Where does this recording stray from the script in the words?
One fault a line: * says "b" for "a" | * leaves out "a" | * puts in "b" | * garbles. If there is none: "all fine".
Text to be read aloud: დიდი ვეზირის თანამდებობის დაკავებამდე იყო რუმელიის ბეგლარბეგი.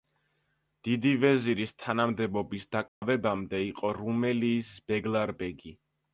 all fine